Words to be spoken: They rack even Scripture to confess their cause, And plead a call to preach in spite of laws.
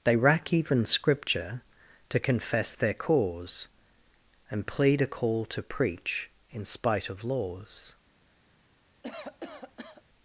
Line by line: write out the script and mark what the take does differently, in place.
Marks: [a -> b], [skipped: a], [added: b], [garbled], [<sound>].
They rack even Scripture to confess their cause, And plead a call to preach in spite of laws. [cough]